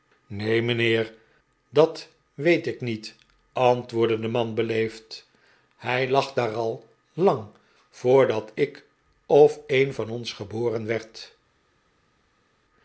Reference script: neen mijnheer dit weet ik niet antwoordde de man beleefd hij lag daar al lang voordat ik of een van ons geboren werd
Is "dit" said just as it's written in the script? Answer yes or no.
no